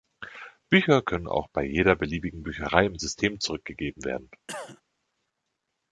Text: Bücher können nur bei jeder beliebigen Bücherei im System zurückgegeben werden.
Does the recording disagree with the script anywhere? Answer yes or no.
yes